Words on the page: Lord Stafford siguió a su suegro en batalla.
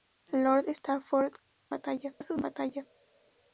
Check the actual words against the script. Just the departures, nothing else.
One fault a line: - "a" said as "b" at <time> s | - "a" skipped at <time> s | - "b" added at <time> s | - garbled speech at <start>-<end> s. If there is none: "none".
- "siguió" said as "batalla" at 1.7 s
- "suegro" skipped at 2.4 s